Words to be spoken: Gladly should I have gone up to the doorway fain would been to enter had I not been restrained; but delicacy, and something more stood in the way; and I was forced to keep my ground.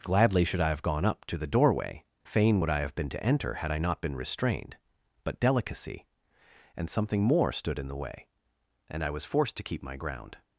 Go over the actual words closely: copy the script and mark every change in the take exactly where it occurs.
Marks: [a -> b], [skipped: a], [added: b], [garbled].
Gladly should I have gone up to the doorway fain would [added: I have] been to enter had I not been restrained; but delicacy, and something more stood in the way; and I was forced to keep my ground.